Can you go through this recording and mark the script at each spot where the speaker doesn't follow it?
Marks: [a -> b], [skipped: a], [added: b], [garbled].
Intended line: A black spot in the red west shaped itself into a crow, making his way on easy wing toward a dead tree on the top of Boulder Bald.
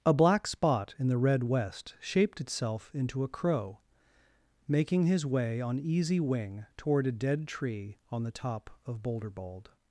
A black spot in the red west shaped itself into a crow, making his way on easy wing toward a dead tree on the top of Boulder Bald.